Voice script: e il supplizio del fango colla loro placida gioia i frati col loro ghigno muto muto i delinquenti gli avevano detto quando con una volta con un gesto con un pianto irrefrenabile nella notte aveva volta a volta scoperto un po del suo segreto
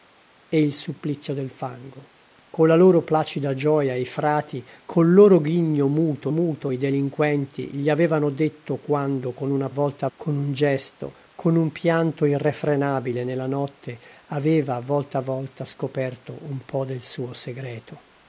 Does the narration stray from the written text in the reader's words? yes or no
no